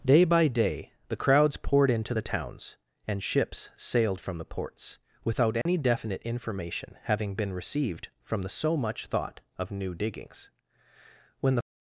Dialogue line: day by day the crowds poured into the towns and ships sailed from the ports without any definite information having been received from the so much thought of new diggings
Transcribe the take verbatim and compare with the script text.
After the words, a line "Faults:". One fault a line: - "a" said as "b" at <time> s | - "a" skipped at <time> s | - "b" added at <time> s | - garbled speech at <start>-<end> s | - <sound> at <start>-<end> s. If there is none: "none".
day by day the crowds poured into the towns and ships sailed from the ports without any definite information having been received from the so much thought of new diggings when the
Faults:
- dropout at 5.6-5.7 s
- "when the" added at 11.4 s